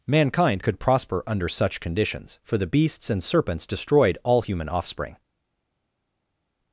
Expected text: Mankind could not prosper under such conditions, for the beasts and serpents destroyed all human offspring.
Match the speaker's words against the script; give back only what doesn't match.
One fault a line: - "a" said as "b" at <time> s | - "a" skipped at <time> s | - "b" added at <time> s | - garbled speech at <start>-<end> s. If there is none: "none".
- "not" skipped at 0.8 s